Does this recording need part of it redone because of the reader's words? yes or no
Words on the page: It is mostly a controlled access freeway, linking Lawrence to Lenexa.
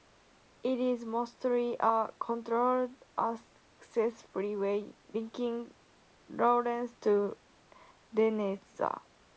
no